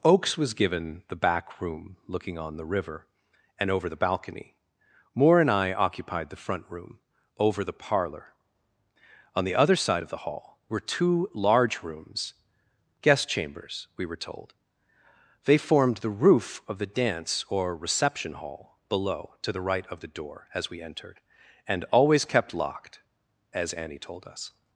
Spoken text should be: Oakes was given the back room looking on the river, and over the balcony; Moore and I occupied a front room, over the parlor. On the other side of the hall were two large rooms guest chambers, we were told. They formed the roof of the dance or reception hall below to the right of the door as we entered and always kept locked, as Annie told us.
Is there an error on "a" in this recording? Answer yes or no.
yes